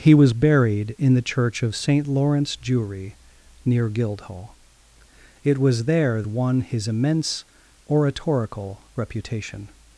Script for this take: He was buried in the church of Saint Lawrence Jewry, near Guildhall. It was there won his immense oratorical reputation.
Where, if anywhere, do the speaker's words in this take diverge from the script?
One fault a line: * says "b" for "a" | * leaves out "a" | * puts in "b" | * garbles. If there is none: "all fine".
all fine